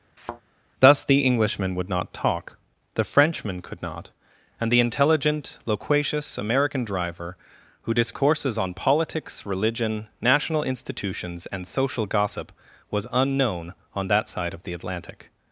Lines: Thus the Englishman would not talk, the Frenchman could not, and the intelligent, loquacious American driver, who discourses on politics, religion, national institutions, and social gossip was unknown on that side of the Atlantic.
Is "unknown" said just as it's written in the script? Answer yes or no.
yes